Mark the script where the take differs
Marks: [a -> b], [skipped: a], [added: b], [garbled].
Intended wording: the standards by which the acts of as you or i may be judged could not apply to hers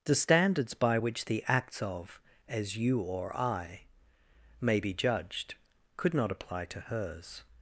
the standards by which the acts of as you or i may be judged could not apply to hers